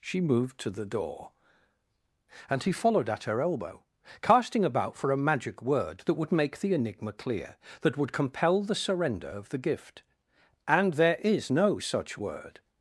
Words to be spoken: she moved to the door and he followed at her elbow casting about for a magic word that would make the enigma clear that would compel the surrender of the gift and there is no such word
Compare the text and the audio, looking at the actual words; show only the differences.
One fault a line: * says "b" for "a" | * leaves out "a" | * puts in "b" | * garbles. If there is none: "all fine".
all fine